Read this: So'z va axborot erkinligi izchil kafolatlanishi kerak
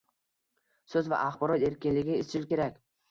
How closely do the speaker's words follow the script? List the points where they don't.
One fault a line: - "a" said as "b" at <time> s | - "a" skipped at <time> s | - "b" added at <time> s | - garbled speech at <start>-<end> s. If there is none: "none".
- "kafolatlanishi" skipped at 2.5 s